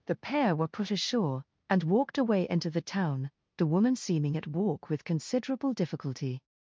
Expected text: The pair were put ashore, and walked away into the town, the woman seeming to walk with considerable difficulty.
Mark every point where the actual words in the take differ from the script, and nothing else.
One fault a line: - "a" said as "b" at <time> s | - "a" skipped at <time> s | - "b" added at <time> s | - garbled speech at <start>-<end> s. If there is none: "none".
- "to" said as "at" at 4.3 s